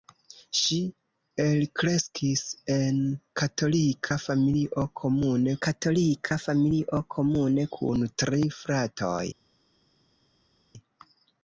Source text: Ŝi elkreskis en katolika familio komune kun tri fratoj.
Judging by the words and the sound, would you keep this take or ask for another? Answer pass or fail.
fail